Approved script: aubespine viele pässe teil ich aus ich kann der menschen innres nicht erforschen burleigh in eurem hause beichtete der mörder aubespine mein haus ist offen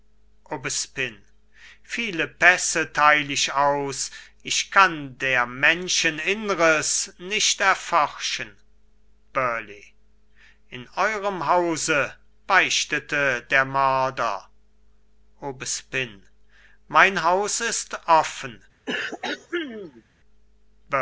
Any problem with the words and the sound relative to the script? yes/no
yes